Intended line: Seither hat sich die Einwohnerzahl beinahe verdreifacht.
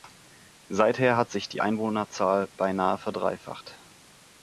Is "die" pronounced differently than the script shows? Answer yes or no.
no